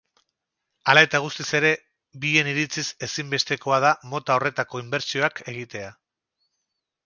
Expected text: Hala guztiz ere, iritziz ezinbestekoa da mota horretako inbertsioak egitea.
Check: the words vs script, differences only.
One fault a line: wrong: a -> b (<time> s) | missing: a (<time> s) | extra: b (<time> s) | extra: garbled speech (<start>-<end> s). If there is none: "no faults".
extra: eta (1.1 s)
extra: bien (2.2 s)